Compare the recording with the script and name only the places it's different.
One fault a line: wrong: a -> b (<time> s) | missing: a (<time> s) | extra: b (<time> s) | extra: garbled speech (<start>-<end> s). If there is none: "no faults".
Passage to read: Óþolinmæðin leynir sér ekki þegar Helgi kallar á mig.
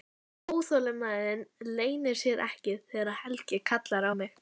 no faults